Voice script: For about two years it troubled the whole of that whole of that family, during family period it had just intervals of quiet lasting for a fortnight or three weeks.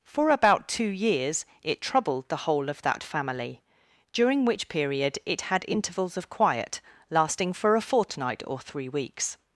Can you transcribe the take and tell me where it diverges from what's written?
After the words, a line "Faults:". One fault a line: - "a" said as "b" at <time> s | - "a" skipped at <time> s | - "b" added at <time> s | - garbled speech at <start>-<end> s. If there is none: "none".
For about two years it troubled the whole of that family, during which period it had intervals of quiet lasting for a fortnight or three weeks.
Faults:
- "whole of that" skipped at 3.0 s
- "family" said as "which" at 4.5 s
- "just" skipped at 5.6 s